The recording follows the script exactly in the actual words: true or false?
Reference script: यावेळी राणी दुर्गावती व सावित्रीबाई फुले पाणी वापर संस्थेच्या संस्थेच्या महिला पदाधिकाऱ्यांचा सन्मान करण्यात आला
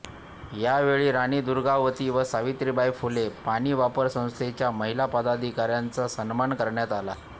false